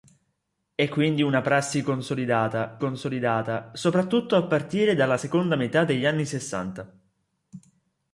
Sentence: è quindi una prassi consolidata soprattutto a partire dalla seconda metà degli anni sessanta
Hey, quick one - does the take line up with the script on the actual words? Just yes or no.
no